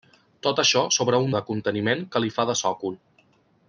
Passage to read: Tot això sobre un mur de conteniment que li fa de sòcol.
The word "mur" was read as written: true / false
false